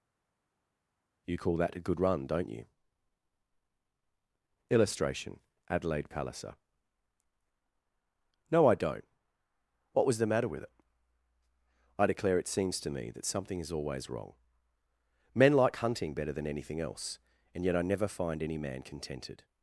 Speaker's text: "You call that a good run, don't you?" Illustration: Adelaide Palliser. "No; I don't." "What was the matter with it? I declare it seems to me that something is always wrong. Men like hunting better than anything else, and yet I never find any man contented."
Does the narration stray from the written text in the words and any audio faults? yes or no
no